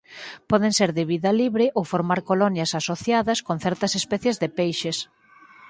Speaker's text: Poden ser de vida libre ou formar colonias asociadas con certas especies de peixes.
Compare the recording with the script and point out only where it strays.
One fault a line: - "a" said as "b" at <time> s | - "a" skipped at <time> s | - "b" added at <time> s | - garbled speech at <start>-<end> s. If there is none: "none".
none